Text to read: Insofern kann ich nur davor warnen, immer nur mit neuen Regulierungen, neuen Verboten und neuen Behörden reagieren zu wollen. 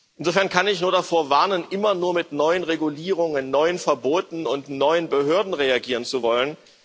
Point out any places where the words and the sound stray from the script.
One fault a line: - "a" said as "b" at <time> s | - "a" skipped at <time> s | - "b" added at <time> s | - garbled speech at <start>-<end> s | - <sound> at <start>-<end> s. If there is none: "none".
none